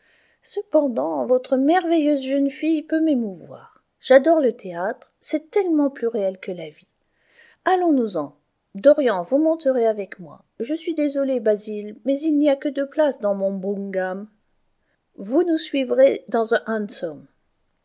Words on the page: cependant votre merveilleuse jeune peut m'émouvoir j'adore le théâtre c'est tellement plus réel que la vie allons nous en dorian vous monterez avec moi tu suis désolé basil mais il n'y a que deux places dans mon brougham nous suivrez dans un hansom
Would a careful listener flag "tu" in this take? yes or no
yes